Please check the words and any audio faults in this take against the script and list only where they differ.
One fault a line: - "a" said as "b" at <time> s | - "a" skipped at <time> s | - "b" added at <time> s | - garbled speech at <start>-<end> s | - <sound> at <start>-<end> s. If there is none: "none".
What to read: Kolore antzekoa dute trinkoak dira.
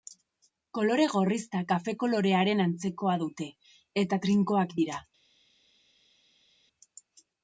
- "gorrizta kafe kolorearen" added at 1.1 s
- "eta" added at 4.1 s